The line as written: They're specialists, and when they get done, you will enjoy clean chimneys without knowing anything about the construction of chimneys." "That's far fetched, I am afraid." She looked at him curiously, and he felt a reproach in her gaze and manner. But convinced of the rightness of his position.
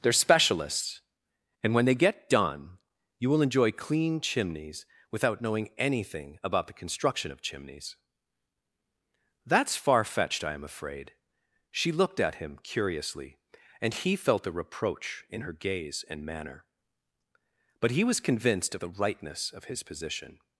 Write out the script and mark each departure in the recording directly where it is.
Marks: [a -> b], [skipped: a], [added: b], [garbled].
They're specialists, and when they get done, you will enjoy clean chimneys without knowing anything about the construction of chimneys." "That's far fetched, I am afraid." She looked at him curiously, and he felt a reproach in her gaze and manner. But [added: he was] convinced of the rightness of his position.